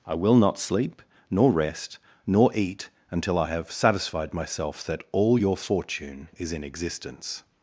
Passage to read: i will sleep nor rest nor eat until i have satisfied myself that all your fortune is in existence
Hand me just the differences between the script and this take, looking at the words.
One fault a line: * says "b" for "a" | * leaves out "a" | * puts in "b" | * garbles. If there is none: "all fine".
* puts in "not"